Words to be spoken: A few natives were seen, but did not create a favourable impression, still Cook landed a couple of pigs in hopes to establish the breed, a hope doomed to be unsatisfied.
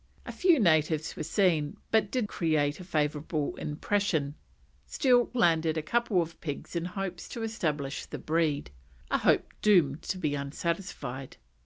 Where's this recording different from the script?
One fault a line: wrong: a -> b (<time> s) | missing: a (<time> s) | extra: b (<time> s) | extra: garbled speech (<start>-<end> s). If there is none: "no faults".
missing: not (2.3 s)
missing: Cook (5.3 s)